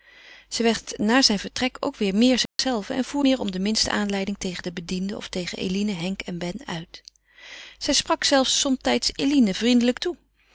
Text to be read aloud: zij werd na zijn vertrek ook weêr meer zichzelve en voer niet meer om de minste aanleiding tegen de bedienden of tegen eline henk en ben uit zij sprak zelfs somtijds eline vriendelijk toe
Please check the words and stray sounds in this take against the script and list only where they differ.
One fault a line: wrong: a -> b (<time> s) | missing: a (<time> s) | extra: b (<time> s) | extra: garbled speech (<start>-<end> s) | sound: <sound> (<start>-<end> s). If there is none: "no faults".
sound: dropout (2.5-2.6 s)
missing: niet (3.2 s)